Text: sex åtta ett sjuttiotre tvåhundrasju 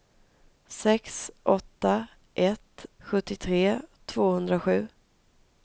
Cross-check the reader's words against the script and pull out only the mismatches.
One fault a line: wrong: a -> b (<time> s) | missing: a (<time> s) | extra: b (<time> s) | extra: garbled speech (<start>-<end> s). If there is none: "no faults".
no faults